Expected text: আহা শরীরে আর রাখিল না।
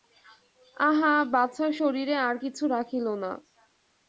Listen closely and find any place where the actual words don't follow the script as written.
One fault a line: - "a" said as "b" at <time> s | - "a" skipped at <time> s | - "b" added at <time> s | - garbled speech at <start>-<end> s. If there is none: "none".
- "বাছার" added at 1.3 s
- "কিছু" added at 2.4 s